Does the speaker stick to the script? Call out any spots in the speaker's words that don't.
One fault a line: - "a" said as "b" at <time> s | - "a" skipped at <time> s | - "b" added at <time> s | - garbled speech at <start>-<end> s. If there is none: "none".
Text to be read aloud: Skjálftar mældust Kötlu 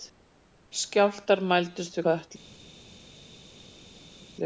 none